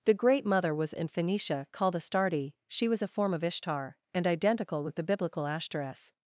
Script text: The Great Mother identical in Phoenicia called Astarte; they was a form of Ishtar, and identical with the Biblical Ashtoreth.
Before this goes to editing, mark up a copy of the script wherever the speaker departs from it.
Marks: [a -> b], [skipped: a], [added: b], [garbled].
The Great Mother [identical -> was] in Phoenicia called Astarte; [they -> she] was a form of Ishtar, and identical with the Biblical Ashtoreth.